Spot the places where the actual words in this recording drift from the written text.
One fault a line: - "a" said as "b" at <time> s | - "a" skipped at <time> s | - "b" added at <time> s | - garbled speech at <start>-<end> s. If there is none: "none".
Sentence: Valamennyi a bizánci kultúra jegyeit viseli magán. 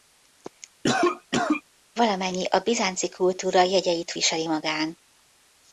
none